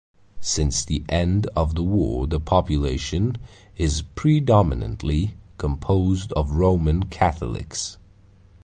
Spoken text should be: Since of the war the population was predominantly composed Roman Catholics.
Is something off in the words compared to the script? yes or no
yes